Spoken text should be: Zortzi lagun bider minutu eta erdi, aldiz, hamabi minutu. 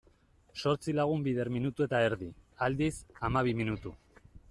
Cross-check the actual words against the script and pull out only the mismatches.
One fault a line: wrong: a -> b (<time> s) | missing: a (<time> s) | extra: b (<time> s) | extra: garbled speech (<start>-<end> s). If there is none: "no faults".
no faults